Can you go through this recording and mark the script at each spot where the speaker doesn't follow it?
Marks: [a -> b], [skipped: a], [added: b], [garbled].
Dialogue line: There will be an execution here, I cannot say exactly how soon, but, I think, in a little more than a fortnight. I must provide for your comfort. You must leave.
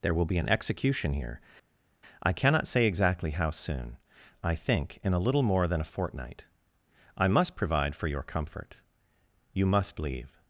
There will be an execution here, I cannot say exactly how soon, [skipped: but,] I think, in a little more than a fortnight. I must provide for your comfort. You must leave.